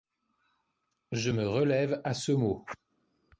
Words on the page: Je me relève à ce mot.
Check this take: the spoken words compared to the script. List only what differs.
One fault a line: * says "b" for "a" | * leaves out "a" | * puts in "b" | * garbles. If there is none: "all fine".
all fine